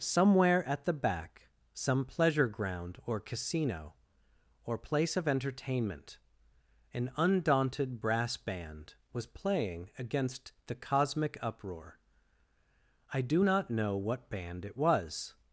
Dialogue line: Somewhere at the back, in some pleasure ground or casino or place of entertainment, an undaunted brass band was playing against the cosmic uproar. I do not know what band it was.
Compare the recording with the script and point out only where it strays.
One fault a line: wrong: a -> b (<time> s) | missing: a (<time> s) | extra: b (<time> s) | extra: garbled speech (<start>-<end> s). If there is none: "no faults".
missing: in (1.5 s)